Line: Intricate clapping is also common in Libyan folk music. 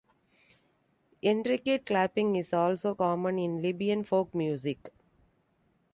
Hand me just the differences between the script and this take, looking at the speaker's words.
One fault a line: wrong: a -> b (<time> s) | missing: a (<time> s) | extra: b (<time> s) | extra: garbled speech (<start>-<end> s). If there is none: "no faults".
no faults